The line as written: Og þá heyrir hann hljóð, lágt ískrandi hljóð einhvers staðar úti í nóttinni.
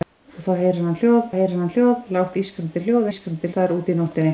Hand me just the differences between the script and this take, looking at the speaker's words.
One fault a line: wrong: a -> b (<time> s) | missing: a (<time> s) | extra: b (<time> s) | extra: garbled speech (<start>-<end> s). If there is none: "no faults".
extra: heyrir hann hljóð (1.4 s)
wrong: einhvers -> ískrandi (3.1 s)